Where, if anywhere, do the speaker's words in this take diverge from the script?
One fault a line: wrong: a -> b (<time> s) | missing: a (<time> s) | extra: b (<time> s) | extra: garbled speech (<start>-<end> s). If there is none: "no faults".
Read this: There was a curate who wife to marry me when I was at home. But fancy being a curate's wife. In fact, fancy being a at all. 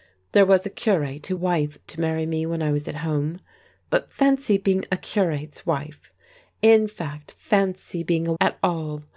no faults